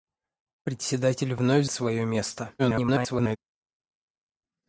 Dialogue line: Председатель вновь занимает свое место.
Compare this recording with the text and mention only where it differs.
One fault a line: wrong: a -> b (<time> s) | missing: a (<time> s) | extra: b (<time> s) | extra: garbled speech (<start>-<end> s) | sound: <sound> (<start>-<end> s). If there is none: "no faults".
missing: занимает (1.7 s)
extra: garbled speech (2.6-3.4 s)